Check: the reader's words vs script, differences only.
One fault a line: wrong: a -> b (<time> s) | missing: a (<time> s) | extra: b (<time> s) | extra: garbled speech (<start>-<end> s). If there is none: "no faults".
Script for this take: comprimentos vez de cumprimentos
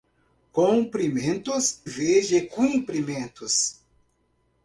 no faults